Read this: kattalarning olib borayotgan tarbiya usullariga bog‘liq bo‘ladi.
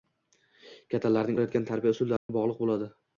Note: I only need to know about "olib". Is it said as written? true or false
false